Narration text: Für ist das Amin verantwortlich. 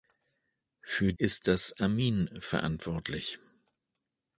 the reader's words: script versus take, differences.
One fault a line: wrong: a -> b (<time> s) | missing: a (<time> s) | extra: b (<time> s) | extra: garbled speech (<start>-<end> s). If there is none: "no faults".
no faults